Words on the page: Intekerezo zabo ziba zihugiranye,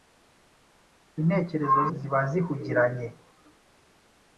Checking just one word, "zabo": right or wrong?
wrong